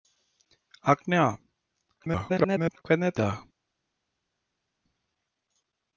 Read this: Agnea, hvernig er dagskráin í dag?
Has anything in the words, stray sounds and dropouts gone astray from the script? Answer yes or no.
yes